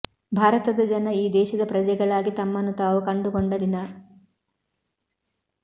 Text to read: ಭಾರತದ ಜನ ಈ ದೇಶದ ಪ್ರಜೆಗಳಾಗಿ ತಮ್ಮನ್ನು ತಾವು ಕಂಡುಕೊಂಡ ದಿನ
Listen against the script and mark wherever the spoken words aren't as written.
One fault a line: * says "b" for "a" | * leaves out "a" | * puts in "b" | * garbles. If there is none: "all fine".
all fine